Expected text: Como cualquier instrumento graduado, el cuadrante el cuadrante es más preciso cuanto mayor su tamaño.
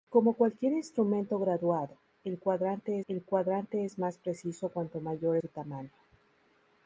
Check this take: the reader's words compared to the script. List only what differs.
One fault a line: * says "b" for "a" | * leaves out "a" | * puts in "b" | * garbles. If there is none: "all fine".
all fine